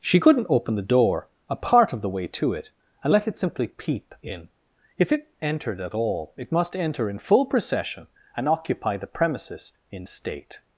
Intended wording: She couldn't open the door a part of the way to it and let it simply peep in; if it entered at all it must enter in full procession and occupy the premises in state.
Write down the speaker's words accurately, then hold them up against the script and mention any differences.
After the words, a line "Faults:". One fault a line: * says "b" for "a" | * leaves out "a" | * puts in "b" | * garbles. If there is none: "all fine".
She couldn't open the door a part of the way to it and let it simply peep in; if it entered at all it must enter in full procession and occupy the premises in state.
Faults:
all fine